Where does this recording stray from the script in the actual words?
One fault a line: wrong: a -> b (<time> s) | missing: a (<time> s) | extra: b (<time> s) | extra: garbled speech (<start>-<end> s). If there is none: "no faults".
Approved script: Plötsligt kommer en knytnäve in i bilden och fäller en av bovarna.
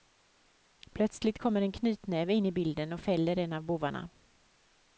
no faults